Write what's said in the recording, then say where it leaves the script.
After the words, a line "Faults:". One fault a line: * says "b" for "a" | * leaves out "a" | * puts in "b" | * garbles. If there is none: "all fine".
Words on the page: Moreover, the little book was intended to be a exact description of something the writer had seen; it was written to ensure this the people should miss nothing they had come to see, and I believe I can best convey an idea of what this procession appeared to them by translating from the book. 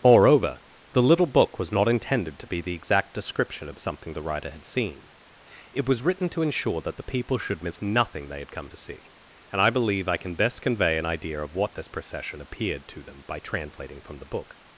Moreover, the little book was not intended to be the exact description of something the writer had seen; it was written to ensure that the people should miss nothing they had come to see, and I believe I can best convey an idea of what this procession appeared to them by translating from the book.
Faults:
* puts in "not"
* says "the" for "a"
* says "that" for "this"